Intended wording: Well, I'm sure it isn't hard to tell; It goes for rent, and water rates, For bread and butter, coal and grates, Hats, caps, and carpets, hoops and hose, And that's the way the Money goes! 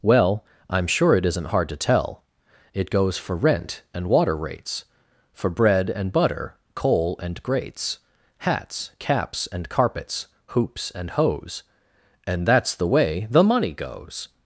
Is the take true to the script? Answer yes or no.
yes